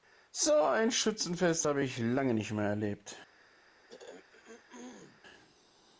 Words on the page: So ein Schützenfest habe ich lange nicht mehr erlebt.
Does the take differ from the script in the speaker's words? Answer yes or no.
no